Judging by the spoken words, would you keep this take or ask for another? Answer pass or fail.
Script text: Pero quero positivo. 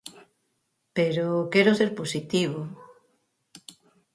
fail